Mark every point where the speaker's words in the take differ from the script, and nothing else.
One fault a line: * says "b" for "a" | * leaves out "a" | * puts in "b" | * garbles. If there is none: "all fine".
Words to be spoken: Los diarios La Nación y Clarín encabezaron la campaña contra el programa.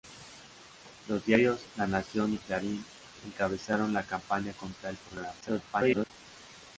* garbles